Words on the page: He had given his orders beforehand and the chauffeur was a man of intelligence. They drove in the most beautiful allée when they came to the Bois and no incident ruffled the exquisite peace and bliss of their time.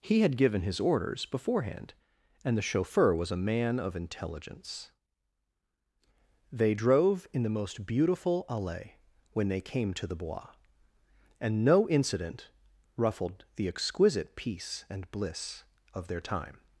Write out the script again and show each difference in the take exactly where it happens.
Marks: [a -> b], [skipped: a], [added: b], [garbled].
He had given his orders beforehand and the chauffeur was a man of intelligence. They drove in the most beautiful allée when they came to the Bois and no incident ruffled the exquisite peace and bliss of their time.